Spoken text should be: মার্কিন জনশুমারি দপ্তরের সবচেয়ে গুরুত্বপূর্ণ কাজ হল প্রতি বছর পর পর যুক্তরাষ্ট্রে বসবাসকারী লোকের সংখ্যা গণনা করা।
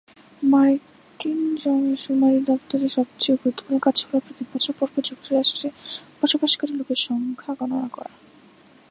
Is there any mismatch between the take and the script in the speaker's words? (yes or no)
no